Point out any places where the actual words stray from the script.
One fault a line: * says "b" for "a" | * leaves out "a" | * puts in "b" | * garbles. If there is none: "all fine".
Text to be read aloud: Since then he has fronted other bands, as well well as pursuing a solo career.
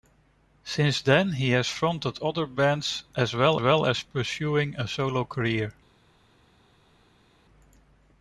all fine